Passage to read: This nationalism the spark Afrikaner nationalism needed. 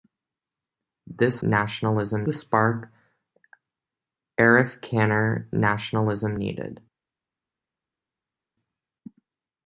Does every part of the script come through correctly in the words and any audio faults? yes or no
yes